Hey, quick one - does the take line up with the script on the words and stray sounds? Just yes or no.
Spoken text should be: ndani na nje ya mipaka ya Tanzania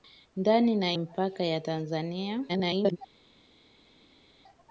no